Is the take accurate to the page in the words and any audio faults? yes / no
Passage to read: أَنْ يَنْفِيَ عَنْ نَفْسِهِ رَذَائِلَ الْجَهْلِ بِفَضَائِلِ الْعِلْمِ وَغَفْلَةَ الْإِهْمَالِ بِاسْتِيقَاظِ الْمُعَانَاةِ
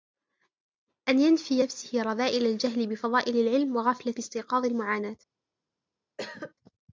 no